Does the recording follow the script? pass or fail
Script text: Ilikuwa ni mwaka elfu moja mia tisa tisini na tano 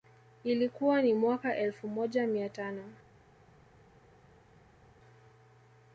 fail